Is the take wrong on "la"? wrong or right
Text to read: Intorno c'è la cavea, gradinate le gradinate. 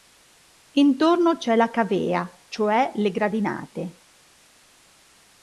right